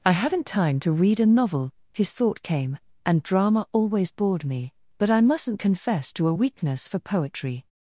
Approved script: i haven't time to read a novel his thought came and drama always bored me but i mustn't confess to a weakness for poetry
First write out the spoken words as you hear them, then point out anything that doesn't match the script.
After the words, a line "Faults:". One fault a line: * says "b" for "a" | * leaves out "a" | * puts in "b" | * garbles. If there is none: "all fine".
i haven't time to read a novel his thought came and drama always bored me but i mustn't confess to a weakness for poetry
Faults:
all fine